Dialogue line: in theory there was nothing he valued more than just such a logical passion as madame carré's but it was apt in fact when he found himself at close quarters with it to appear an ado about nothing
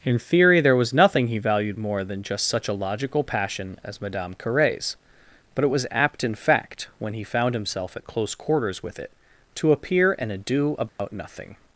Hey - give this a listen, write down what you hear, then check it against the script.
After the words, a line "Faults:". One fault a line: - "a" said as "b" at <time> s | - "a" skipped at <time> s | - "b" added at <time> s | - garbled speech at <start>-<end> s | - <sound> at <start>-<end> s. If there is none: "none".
in theory there was nothing he valued more than just such a logical passion as madame carré's but it was apt in fact when he found himself at close quarters with it to appear an ado about nothing
Faults:
- dropout at 10.9-11.0 s